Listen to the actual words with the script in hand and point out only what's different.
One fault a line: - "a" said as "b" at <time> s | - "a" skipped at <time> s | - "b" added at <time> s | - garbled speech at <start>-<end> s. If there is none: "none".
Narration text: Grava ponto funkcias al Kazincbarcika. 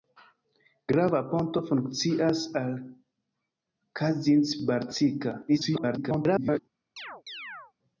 - garbled speech at 5.5-6.6 s